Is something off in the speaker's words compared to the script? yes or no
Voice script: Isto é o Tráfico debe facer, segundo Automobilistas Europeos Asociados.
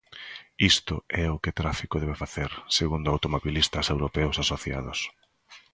yes